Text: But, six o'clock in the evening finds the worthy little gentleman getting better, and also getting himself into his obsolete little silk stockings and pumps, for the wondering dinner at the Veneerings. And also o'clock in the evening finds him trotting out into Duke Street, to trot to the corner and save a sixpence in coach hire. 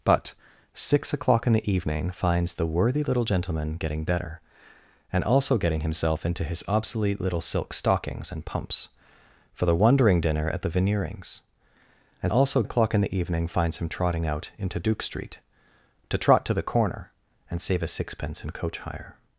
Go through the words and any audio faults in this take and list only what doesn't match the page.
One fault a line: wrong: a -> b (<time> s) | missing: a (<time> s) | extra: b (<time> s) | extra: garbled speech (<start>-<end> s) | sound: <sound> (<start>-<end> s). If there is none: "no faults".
no faults